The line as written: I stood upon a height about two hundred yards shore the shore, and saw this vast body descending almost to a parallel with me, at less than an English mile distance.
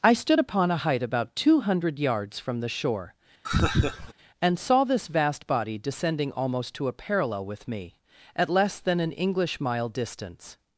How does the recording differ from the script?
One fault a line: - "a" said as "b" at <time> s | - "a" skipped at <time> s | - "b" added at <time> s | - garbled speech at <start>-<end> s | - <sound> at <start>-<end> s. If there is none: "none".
- "shore" said as "from" at 2.4 s
- laugh at 3.4-4.1 s